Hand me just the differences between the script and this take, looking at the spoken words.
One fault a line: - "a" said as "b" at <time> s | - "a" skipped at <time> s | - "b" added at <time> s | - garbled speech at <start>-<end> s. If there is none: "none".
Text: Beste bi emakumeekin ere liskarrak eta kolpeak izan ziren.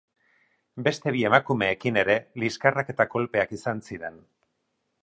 none